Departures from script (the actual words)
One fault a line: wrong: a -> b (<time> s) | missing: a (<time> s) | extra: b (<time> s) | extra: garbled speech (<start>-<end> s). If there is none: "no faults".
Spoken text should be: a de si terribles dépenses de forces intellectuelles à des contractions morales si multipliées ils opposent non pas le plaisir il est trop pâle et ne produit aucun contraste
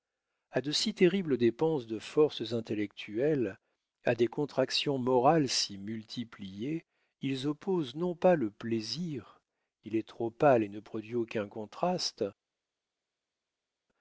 no faults